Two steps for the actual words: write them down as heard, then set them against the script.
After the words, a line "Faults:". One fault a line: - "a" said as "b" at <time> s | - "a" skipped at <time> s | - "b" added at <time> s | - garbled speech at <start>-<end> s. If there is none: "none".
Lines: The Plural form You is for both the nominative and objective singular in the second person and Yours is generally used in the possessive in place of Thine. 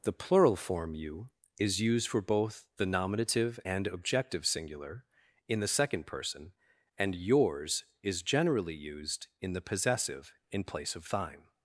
The Plural form You is used for both the nominative and objective singular in the second person and Yours is generally used in the possessive in place of Thine.
Faults:
- "used" added at 1.8 s